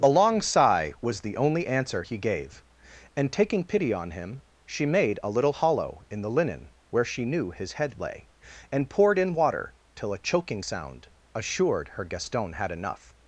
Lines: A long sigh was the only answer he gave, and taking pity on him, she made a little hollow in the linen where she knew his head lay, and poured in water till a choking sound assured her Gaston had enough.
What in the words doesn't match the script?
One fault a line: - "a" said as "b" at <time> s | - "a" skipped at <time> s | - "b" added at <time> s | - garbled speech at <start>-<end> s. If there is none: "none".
none